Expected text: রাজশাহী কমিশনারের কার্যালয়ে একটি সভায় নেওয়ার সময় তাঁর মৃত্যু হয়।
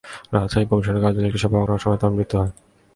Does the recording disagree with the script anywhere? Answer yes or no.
no